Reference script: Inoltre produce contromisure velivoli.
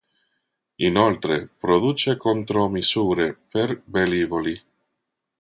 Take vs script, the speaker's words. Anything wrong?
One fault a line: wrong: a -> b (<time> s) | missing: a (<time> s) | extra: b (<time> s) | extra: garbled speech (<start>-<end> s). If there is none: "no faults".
extra: per (3.5 s)